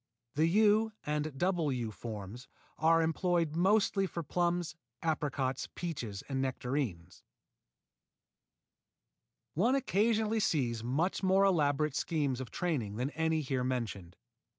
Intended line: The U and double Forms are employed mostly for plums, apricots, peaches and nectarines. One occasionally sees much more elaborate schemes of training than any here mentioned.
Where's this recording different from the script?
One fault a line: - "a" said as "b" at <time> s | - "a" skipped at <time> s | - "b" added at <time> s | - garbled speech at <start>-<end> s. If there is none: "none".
- "U" added at 1.7 s